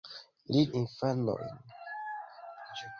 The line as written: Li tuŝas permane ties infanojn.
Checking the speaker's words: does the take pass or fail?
fail